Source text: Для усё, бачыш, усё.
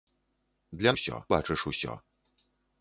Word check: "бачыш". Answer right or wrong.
right